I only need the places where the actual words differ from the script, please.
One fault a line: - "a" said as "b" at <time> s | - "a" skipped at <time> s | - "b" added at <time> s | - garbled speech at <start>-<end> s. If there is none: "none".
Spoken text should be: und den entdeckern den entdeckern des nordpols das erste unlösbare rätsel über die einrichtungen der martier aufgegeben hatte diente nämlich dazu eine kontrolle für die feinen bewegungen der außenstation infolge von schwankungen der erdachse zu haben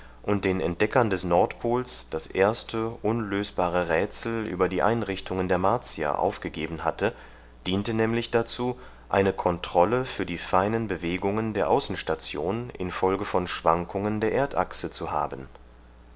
- "den entdeckern" skipped at 1.1 s